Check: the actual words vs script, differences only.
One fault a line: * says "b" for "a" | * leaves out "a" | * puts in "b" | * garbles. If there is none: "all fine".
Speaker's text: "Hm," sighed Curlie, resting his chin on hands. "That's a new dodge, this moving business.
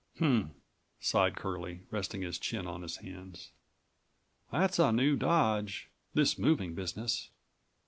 * puts in "his"